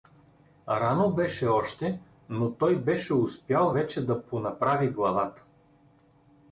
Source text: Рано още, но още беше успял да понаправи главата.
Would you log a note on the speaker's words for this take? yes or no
yes